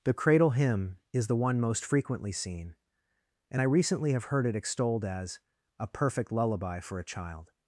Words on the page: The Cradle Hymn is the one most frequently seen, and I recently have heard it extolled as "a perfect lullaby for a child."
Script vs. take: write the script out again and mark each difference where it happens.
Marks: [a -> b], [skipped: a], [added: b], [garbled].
The Cradle Hymn is the one most frequently seen, and I recently have heard it extolled as "a perfect lullaby for a child."